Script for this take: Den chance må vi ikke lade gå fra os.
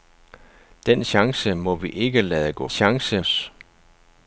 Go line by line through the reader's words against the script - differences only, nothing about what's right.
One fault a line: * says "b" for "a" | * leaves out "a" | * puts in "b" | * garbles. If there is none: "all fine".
* says "chance" for "fra"